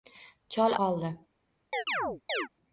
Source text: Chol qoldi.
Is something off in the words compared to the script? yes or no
no